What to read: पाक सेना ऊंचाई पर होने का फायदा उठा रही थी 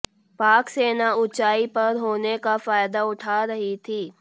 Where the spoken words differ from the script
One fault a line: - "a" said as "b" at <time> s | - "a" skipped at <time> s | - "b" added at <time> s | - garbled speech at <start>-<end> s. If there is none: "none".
none